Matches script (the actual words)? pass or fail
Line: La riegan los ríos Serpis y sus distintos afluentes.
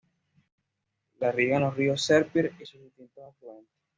pass